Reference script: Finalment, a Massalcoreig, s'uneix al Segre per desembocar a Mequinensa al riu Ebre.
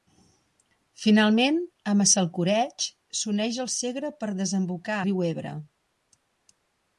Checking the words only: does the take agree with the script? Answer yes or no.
no